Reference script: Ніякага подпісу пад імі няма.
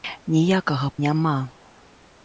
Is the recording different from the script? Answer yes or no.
yes